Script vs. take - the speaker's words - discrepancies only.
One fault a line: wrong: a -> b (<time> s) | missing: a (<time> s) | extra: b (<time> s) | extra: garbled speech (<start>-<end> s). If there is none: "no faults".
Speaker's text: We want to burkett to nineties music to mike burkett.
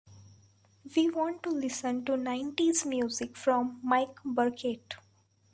wrong: burkett -> listen (1.5 s)
wrong: to -> from (3.4 s)